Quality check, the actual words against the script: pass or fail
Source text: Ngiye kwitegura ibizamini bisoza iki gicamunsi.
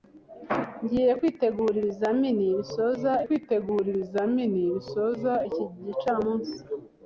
fail